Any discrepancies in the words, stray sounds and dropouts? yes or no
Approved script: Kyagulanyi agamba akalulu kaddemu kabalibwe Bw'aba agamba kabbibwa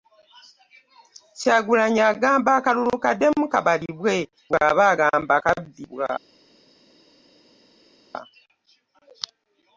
no